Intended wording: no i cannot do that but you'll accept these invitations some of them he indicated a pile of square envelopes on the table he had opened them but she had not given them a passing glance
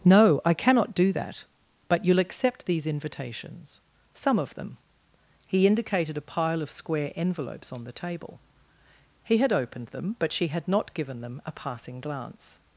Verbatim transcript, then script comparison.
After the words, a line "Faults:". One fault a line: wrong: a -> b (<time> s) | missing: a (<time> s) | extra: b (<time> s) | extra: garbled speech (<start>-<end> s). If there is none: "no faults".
no i cannot do that but you'll accept these invitations some of them he indicated a pile of square envelopes on the table he had opened them but she had not given them a passing glance
Faults:
no faults